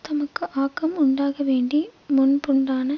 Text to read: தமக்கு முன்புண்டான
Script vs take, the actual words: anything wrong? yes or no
yes